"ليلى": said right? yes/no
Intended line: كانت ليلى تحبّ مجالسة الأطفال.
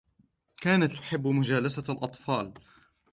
no